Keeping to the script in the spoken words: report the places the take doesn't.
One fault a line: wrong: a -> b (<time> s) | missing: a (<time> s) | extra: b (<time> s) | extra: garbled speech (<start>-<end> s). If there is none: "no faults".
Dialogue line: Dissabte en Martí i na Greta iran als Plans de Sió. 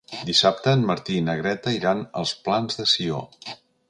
no faults